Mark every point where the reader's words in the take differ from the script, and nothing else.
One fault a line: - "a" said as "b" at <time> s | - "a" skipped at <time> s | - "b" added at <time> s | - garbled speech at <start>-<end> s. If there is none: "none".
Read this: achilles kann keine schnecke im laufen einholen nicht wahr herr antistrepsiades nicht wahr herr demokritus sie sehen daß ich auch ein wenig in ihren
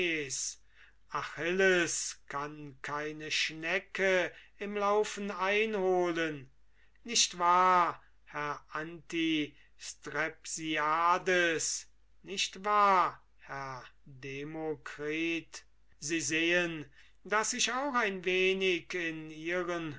none